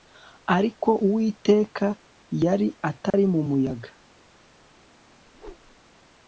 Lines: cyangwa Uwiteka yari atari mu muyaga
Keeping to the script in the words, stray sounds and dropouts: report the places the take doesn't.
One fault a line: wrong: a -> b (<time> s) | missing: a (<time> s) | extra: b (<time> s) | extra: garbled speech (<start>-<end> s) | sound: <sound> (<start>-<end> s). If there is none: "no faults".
wrong: cyangwa -> ariko (0.6 s)
sound: dropout (3.1-3.1 s)
sound: whoosh (5.3-5.8 s)